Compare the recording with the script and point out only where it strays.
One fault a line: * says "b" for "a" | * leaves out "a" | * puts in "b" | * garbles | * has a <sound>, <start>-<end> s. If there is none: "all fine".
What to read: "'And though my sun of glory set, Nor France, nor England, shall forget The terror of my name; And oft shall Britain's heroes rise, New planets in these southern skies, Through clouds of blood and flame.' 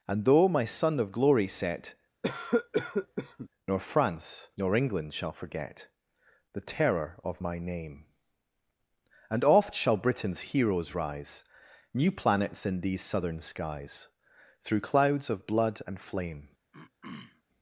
* has a cough, 2.2-3.5 s
* has a throat clearing, 16.7-17.4 s